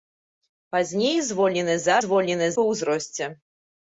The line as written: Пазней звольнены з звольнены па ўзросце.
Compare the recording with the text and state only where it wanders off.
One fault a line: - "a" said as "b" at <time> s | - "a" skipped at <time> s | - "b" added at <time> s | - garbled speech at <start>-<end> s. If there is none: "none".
none